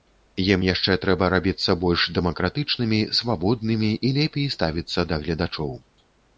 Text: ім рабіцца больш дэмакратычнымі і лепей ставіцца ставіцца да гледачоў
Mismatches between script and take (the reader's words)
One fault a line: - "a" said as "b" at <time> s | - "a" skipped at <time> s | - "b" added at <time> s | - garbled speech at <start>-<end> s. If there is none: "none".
- "яшчэ трэба" added at 0.6 s
- "свабоднымі" added at 3.2 s
- "ставіцца" skipped at 5.1 s